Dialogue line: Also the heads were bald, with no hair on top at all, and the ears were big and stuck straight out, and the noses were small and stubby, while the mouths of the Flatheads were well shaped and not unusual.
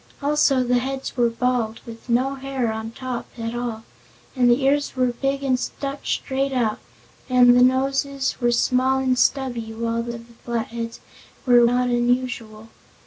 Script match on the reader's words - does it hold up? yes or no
no